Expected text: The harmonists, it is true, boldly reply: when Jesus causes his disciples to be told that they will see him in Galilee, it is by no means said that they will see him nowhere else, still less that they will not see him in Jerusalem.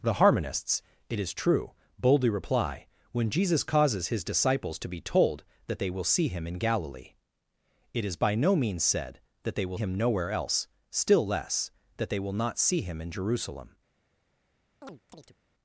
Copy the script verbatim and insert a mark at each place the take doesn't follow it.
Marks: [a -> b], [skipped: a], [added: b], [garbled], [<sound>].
The harmonists, it is true, boldly reply: when Jesus causes his disciples to be told that they will see him in Galilee, it is by no means said that they will [skipped: see] him nowhere else, still less that they will not see him in Jerusalem. [chirp]